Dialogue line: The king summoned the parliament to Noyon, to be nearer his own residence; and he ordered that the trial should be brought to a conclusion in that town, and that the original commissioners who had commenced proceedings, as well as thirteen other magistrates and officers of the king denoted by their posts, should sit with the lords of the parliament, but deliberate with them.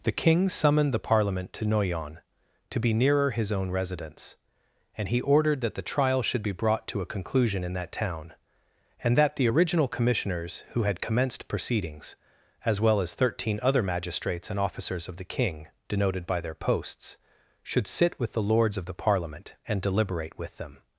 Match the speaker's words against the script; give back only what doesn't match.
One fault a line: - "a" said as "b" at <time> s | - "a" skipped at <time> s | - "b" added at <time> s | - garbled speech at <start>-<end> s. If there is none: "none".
- "but" said as "and" at 19.7 s